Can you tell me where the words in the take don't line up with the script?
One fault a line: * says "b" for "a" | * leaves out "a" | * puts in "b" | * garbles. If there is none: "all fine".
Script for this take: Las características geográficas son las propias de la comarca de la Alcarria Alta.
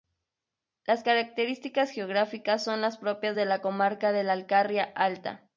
all fine